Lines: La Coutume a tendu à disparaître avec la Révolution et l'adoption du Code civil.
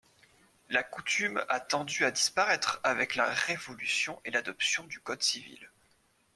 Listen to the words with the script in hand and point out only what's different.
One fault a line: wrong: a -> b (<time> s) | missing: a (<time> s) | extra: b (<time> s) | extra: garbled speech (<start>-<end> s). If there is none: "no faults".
no faults